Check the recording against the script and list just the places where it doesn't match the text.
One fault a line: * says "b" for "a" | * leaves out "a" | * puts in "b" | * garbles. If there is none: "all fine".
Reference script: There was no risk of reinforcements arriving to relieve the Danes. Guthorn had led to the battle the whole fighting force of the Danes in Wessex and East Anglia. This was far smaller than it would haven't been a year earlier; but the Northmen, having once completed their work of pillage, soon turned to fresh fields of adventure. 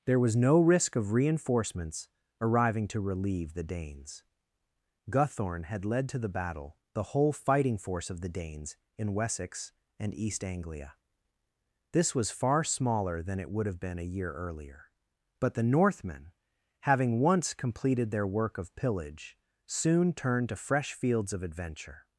* says "have" for "haven't"